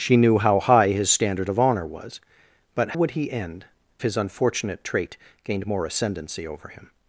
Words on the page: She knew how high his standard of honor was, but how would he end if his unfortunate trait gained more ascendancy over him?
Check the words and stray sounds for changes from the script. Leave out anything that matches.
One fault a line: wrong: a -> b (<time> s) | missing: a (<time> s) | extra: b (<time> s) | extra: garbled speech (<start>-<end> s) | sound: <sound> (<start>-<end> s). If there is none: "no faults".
missing: how (2.9 s)
missing: if (3.6 s)